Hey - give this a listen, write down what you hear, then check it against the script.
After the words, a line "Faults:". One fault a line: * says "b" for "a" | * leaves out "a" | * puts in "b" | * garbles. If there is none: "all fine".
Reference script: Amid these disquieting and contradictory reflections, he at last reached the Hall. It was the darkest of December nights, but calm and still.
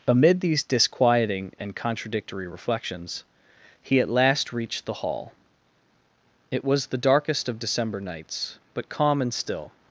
Amid these disquieting and contradictory reflections, he at last reached the Hall. It was the darkest of December nights, but calm and still.
Faults:
all fine